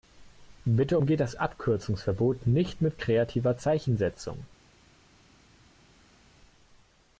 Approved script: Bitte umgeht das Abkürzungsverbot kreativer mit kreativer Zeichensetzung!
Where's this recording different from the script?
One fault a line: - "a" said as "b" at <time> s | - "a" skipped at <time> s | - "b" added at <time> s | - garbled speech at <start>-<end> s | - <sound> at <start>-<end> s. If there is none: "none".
- "kreativer" said as "nicht" at 2.5 s